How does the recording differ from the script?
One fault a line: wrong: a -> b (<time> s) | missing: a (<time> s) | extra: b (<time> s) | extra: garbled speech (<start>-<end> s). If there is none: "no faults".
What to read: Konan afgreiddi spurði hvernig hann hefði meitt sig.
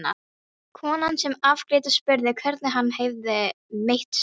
extra: sem (1.2 s)